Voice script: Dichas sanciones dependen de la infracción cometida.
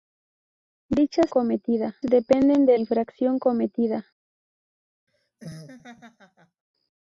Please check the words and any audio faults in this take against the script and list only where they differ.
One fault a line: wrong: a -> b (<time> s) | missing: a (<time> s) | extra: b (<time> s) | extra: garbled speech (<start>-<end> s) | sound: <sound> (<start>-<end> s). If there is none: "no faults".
wrong: sanciones -> cometida (1.3 s)
missing: la (2.8 s)
sound: laugh (5.1-6.6 s)